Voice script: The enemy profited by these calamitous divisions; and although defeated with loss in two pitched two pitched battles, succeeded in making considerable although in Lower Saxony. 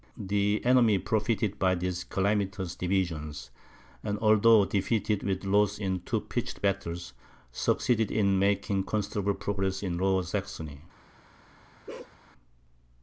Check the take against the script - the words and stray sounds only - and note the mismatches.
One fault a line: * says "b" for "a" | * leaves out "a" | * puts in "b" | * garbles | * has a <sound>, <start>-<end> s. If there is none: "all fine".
* leaves out "two pitched"
* says "progress" for "although"
* has a bark, 11.9-12.2 s